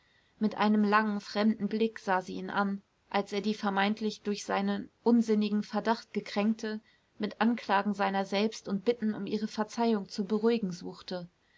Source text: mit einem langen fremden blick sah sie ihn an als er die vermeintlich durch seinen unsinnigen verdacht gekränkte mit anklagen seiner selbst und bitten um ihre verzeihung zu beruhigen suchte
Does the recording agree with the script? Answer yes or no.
yes